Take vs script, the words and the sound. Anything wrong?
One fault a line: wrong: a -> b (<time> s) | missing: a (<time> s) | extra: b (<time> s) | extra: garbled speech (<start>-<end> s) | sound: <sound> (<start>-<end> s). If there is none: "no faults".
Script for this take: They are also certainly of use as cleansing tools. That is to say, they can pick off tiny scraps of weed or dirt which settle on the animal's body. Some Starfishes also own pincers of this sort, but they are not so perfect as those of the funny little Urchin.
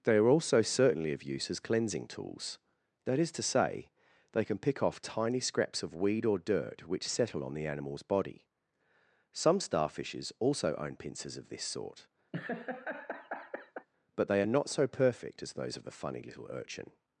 sound: laugh (12.3-13.9 s)